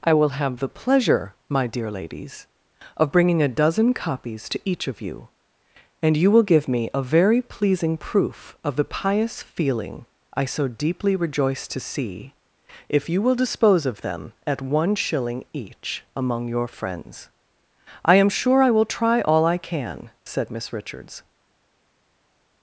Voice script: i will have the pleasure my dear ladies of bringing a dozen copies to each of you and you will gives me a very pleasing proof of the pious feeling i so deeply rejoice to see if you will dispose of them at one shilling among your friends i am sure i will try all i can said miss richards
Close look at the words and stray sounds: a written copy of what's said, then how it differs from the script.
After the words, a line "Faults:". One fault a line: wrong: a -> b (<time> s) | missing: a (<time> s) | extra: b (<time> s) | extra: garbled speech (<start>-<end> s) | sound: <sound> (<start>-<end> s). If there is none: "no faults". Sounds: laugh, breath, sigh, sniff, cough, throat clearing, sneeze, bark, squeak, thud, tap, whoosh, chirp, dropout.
i will have the pleasure my dear ladies of bringing a dozen copies to each of you and you will give me a very pleasing proof of the pious feeling i so deeply rejoice to see if you will dispose of them at one shilling each among your friends i am sure i will try all i can said miss richards
Faults:
wrong: gives -> give (6.4 s)
extra: each (15.5 s)